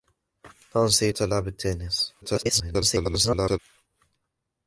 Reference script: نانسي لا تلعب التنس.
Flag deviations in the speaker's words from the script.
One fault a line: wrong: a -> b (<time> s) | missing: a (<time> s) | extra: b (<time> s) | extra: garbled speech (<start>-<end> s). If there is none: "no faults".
missing: لا (1.1 s)
extra: garbled speech (2.2-3.6 s)